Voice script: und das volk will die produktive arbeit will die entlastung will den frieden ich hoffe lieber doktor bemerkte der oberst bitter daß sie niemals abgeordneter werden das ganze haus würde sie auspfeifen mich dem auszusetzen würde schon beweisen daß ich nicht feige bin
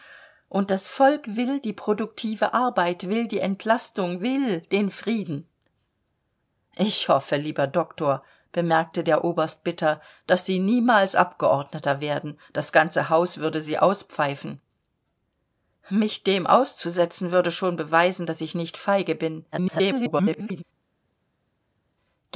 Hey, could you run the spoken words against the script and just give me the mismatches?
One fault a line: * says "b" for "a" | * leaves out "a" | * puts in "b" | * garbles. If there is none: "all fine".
* garbles